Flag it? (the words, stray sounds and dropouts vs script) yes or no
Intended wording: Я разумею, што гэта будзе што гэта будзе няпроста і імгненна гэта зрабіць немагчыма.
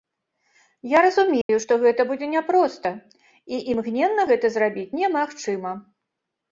yes